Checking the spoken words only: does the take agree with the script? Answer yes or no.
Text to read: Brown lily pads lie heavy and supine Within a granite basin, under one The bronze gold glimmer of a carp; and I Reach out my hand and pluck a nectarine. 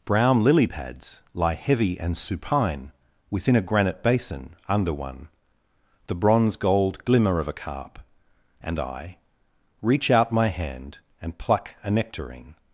yes